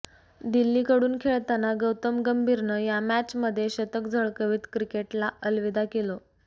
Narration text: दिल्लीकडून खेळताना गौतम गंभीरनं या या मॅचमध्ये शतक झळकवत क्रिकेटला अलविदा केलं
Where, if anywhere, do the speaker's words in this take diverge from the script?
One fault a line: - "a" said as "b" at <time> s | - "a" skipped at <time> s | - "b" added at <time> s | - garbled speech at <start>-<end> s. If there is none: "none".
- "या" skipped at 3.0 s